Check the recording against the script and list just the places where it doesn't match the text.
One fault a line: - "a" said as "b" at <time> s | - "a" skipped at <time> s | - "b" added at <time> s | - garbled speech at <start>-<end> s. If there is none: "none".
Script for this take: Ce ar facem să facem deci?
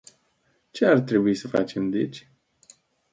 - "facem" said as "trebui" at 1.0 s